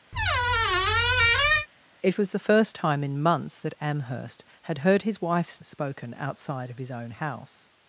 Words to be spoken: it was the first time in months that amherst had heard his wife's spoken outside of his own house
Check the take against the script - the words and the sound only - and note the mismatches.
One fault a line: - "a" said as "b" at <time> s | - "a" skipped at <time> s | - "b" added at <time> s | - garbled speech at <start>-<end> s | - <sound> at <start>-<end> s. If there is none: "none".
- squeak at 0.1-1.7 s